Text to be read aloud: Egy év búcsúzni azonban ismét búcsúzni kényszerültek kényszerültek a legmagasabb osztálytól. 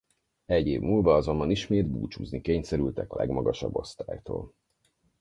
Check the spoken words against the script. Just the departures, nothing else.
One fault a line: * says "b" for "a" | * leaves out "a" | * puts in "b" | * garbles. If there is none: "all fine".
* says "múlva" for "búcsúzni"
* leaves out "kényszerültek"